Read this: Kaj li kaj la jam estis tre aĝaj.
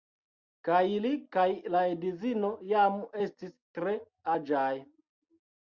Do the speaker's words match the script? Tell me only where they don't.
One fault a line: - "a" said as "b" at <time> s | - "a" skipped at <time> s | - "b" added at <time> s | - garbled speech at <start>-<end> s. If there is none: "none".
- "edzino" added at 1.9 s